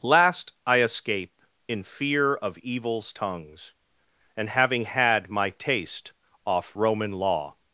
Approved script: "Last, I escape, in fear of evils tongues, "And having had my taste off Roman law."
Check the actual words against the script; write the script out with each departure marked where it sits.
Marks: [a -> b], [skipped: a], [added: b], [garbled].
"Last, I escape, in fear of evils tongues, "And having had my taste off Roman law."